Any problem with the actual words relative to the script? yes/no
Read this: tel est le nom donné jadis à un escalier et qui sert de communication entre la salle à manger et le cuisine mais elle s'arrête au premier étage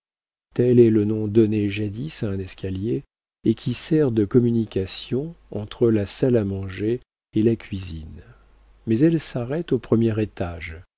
yes